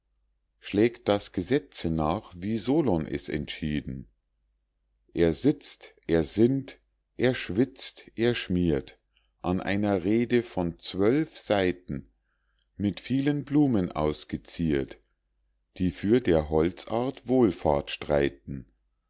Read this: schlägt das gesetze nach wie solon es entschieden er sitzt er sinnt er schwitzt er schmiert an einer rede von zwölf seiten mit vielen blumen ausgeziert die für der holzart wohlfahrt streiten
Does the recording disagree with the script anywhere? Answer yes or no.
no